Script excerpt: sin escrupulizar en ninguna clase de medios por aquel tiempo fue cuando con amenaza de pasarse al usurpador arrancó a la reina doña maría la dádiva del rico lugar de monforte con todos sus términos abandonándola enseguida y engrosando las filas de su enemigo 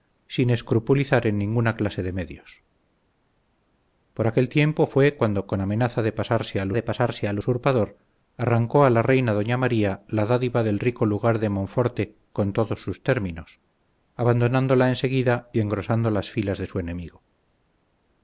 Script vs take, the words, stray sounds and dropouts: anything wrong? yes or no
yes